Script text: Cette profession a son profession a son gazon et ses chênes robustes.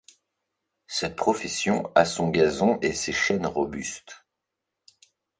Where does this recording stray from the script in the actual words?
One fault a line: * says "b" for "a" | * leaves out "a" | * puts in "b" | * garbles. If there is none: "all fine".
* leaves out "profession a son"